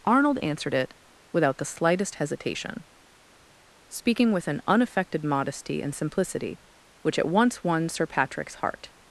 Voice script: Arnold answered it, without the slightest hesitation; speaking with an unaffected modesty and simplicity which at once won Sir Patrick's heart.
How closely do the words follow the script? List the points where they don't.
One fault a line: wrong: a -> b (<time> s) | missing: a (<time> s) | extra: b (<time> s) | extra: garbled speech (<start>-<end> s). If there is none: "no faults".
no faults